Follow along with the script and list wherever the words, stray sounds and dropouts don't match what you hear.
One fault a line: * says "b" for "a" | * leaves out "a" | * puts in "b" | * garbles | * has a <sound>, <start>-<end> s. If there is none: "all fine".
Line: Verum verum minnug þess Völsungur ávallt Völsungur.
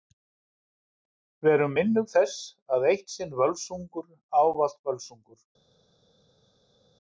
* leaves out "verum"
* puts in "að Eitt sinn"